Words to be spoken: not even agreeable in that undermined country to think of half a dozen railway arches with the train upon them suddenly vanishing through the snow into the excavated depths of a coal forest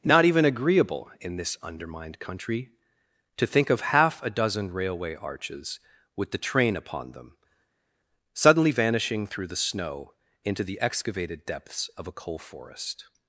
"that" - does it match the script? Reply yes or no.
no